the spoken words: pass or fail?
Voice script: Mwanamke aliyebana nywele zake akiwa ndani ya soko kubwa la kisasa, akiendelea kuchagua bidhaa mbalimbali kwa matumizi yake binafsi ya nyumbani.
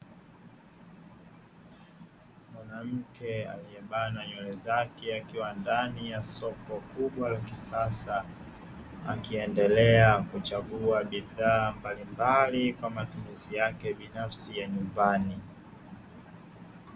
pass